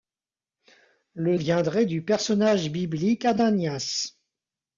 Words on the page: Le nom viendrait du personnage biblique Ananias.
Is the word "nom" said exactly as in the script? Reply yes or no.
no